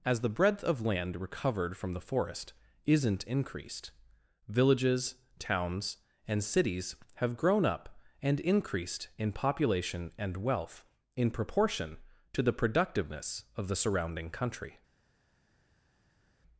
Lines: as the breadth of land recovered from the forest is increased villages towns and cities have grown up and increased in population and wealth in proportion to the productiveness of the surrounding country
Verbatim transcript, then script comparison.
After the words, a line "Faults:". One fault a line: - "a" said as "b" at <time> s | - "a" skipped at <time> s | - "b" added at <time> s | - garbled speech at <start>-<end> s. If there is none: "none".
as the breadth of land recovered from the forest isn't increased villages towns and cities have grown up and increased in population and wealth in proportion to the productiveness of the surrounding country
Faults:
- "is" said as "isn't" at 2.9 s